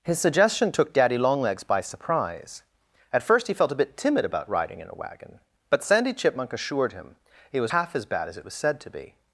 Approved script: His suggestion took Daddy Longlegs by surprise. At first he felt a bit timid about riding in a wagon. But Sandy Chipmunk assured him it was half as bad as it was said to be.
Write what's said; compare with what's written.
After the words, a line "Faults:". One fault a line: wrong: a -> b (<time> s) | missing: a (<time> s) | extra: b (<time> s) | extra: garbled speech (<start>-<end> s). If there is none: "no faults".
His suggestion took Daddy Longlegs by surprise. At first he felt a bit timid about riding in a wagon. But Sandy Chipmunk assured him it was half as bad as it was said to be.
Faults:
no faults